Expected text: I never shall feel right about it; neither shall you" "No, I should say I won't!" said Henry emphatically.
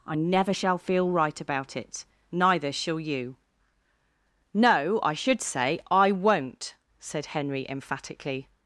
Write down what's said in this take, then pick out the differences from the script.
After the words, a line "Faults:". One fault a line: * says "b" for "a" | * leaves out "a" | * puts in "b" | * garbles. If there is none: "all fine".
I never shall feel right about it; neither shall you" "No, I should say I won't!" said Henry emphatically.
Faults:
all fine